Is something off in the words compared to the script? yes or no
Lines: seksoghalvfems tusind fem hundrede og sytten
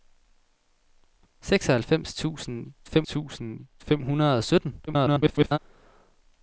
yes